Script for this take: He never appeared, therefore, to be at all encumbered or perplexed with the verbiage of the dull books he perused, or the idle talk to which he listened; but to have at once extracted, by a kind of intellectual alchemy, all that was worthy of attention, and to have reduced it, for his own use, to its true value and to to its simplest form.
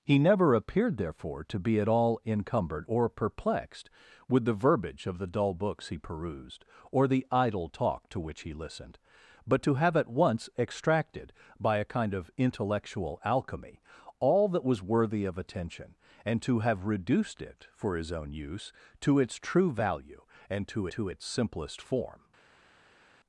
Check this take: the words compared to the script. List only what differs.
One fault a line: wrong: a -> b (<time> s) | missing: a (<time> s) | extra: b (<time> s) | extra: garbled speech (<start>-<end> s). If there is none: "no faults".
no faults